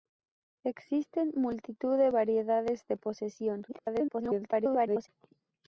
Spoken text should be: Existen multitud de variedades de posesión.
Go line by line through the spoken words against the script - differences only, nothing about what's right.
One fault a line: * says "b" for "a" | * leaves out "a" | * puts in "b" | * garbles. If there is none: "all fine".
* garbles